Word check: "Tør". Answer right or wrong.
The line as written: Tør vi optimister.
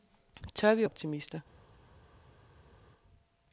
right